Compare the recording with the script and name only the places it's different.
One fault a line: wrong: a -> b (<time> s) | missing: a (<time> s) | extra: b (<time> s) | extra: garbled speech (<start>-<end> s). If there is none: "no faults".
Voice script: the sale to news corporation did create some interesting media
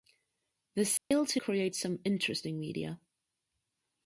missing: news corporation did (1.4 s)